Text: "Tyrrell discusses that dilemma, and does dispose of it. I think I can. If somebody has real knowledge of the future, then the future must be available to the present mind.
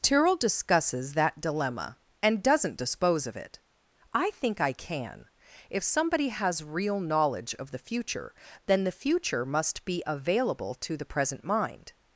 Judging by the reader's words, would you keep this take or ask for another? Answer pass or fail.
fail